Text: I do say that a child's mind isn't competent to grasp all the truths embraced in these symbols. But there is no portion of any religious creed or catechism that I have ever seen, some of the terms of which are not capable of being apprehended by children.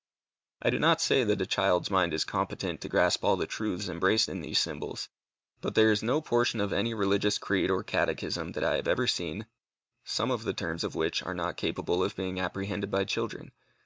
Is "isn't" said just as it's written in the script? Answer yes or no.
no